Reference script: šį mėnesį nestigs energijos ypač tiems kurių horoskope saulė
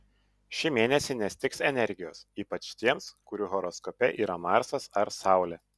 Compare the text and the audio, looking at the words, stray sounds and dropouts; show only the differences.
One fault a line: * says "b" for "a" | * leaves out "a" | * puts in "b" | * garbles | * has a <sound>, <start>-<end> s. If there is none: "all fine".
* puts in "yra marsas ar"